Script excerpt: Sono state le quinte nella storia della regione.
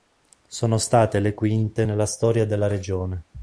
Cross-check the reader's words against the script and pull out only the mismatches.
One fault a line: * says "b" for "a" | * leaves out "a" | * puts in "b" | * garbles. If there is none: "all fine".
all fine